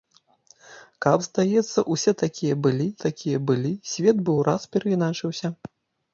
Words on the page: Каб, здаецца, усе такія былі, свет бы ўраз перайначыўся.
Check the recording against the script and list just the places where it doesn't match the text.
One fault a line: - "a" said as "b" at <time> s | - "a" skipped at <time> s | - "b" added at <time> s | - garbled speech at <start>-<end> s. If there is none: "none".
- "такія былі" added at 3.0 s